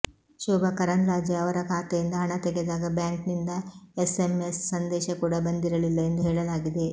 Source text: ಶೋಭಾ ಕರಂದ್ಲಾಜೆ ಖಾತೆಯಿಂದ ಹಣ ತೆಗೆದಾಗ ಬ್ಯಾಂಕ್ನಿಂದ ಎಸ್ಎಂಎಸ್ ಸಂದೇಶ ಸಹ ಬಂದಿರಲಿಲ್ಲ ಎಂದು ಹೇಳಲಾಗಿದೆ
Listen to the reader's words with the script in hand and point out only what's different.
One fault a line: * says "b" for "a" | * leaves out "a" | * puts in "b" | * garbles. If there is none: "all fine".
* puts in "ಅವರ"
* says "ಕೂಡ" for "ಸಹ"